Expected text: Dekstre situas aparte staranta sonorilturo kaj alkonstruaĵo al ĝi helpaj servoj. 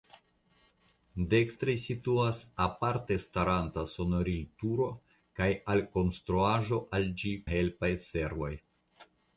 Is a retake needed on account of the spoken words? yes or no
no